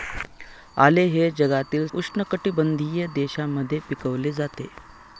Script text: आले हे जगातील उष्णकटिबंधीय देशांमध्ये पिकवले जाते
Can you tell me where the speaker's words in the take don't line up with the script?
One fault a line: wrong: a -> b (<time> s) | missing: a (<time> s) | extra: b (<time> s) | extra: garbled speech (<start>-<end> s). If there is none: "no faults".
no faults